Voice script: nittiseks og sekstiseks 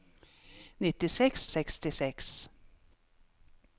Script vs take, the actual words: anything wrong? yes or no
no